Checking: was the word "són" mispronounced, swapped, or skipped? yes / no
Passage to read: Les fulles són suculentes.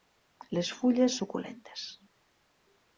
yes